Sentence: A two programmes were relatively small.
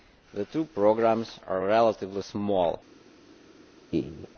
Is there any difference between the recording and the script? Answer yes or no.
yes